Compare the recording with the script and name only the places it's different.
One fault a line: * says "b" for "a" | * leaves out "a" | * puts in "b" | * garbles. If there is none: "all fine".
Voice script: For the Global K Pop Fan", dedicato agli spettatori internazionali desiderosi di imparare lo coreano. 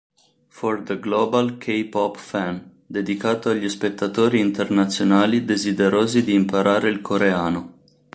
* says "il" for "lo"